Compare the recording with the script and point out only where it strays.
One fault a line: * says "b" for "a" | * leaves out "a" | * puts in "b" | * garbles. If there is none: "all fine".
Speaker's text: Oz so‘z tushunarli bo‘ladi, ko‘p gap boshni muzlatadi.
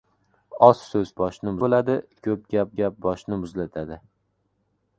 * says "boshni" for "tushunarli"
* puts in "gap"